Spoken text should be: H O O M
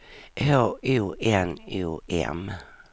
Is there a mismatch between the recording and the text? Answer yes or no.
yes